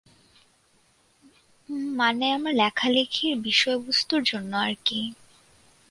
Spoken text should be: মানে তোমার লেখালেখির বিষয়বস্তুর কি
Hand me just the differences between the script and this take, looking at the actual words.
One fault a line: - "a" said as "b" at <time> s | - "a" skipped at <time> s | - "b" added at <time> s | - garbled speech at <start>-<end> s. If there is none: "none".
- "তোমার" said as "আমার" at 2.3 s
- "জন্য আর" added at 4.2 s